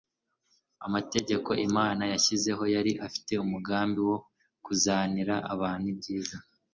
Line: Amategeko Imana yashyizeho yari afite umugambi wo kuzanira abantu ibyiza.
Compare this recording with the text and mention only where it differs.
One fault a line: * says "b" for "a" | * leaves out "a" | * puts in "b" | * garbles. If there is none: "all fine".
all fine